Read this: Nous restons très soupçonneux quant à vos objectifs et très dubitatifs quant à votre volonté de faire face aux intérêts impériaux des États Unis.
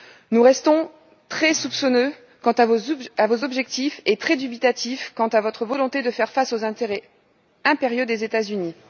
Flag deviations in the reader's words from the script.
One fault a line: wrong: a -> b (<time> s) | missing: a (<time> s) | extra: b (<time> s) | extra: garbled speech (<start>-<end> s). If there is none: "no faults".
no faults